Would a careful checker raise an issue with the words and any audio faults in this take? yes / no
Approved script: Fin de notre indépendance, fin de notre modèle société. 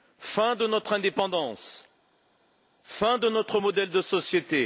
yes